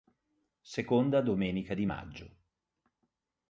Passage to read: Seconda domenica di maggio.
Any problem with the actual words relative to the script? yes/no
no